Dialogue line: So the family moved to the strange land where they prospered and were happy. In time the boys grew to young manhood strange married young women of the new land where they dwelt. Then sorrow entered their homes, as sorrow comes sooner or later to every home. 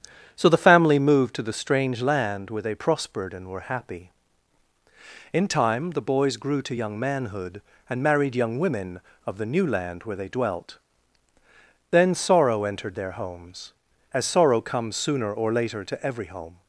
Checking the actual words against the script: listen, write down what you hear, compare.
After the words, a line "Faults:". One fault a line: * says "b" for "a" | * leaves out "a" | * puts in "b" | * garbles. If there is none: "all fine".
So the family moved to the strange land where they prospered and were happy. In time the boys grew to young manhood and married young women of the new land where they dwelt. Then sorrow entered their homes, as sorrow comes sooner or later to every home.
Faults:
* says "and" for "strange"